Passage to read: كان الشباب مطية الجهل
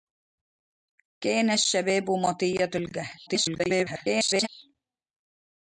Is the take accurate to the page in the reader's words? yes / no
no